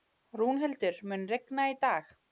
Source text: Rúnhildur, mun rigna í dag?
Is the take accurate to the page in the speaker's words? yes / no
yes